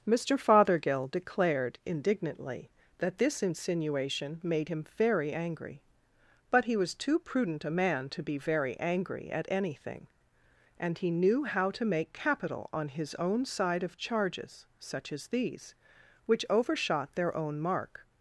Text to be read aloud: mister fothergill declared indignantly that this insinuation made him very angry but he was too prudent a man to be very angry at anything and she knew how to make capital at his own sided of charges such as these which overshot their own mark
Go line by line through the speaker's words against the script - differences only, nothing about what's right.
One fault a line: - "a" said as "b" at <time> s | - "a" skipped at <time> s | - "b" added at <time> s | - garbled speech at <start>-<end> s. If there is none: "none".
- "she" said as "he" at 11.0 s
- "at" said as "on" at 12.7 s
- "sided" said as "side" at 13.4 s